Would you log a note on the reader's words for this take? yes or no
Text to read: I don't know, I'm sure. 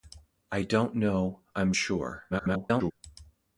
yes